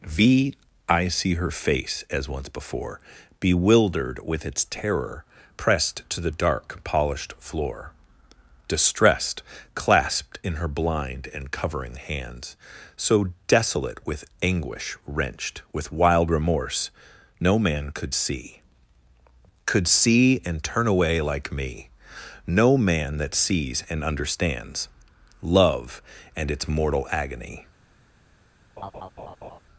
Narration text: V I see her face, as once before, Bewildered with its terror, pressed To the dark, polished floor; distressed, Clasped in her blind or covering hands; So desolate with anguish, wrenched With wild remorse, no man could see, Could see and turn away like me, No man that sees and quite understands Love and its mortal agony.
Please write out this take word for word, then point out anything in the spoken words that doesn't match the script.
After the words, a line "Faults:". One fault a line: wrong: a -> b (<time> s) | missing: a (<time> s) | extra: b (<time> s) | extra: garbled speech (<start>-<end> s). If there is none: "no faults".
V I see her face, as once before, Bewildered with its terror, pressed To the dark, polished floor; distressed, Clasped in her blind and covering hands; So desolate with anguish, wrenched With wild remorse, no man could see, Could see and turn away like me, No man that sees and understands Love and its mortal agony.
Faults:
wrong: or -> and (11.3 s)
missing: quite (24.0 s)